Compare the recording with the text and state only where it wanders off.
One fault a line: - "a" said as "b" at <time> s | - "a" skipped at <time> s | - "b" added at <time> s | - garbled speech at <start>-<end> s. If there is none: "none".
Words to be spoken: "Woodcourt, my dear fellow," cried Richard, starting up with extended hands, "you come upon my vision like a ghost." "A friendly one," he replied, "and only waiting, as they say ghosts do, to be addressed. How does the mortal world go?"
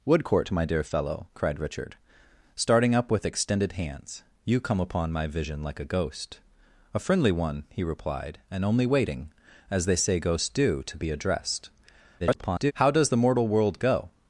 - garbled speech at 12.2-12.7 s